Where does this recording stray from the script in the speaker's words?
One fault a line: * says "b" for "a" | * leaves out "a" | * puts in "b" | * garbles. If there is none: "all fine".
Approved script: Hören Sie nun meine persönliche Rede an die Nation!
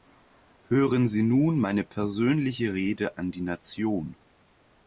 all fine